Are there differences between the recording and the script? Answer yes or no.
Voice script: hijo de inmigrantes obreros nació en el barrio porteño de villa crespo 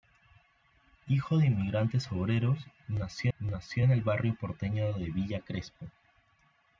yes